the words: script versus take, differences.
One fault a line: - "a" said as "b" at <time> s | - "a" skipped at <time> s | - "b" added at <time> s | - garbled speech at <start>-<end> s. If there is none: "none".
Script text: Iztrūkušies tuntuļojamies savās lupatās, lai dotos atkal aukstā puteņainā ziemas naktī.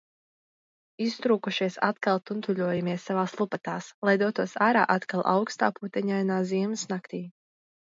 - "atkal" added at 1.9 s
- "ārā" added at 4.7 s